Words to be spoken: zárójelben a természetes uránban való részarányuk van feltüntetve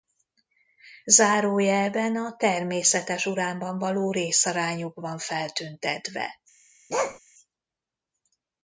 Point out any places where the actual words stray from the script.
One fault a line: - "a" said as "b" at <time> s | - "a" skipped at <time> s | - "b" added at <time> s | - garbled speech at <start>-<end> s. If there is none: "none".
none